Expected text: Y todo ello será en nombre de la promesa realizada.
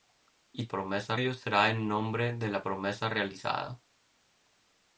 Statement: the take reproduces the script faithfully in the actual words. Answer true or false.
false